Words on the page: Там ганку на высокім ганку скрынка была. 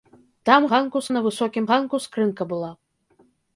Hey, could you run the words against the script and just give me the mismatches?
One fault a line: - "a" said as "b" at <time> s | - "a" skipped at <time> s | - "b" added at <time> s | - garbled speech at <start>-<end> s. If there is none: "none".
none